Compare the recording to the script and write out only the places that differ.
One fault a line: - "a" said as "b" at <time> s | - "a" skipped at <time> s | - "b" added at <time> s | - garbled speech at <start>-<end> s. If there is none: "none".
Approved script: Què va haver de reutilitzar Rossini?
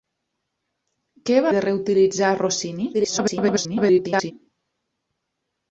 - "haver" skipped at 1.5 s
- garbled speech at 2.9-4.3 s